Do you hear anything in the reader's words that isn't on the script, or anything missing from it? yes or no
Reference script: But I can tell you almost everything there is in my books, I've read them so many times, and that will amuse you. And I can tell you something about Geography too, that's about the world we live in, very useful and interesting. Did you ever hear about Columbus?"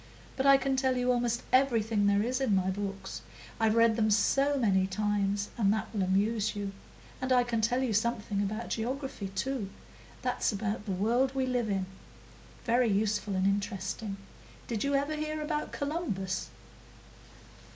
no